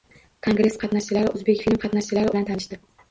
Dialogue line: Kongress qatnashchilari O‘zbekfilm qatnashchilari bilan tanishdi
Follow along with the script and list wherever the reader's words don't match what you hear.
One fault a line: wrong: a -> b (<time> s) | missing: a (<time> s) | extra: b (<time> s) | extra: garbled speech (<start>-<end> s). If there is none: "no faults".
no faults